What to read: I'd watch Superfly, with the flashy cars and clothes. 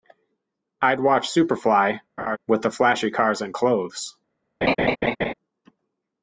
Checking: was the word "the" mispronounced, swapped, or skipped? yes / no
no